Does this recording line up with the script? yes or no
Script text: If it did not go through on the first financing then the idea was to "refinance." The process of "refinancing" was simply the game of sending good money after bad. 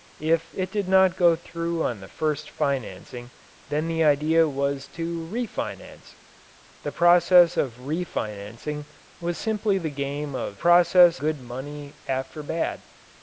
no